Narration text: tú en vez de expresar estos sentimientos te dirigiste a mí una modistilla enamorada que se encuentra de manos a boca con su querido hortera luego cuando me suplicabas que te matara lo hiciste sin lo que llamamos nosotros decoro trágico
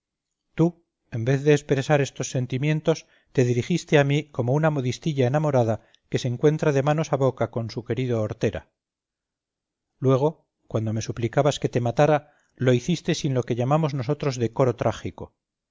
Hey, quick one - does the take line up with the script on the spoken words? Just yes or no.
no